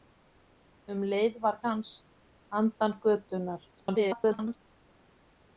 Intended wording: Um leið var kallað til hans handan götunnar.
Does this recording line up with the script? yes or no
no